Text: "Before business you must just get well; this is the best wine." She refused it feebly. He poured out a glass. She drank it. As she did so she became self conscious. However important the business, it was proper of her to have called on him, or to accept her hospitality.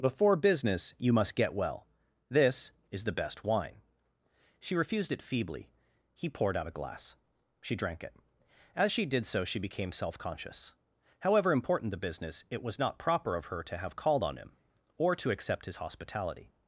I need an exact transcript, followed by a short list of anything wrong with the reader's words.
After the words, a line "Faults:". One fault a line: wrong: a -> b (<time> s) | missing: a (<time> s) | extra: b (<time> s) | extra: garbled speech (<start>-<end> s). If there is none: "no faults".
"Before business you must get well; this is the best wine." She refused it feebly. He poured out a glass. She drank it. As she did so she became self conscious. However important the business, it was not proper of her to have called on him, or to accept his hospitality.
Faults:
missing: just (1.4 s)
extra: not (12.8 s)
wrong: her -> his (15.6 s)